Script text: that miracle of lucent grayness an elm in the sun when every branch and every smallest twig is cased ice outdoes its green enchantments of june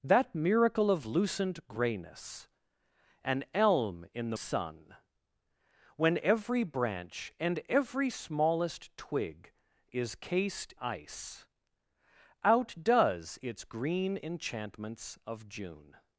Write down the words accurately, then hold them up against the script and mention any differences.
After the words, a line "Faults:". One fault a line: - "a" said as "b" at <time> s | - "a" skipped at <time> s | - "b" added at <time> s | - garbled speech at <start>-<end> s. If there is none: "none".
that miracle of lucent grayness an elm in the sun when every branch and every smallest twig is cased ice outdoes its green enchantments of june
Faults:
none